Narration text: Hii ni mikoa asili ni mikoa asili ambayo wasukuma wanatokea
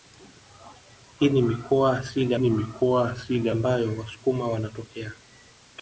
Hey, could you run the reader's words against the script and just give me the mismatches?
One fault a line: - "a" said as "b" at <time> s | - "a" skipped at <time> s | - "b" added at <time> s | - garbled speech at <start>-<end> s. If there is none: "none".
none